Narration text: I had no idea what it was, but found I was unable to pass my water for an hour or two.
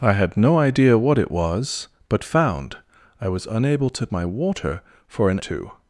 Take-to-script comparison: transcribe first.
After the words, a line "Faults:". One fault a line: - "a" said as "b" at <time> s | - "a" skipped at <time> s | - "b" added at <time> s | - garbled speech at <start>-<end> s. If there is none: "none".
I had no idea what it was, but found I was unable to my water for an two.
Faults:
- "pass" skipped at 4.1 s
- "hour or" skipped at 5.4 s